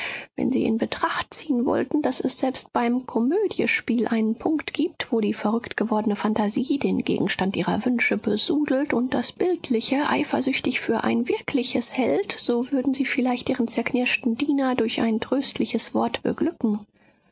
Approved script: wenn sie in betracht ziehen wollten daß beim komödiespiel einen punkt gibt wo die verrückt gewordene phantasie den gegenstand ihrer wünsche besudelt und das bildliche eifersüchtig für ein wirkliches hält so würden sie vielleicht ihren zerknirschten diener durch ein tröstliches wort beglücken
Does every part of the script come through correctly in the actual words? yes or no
no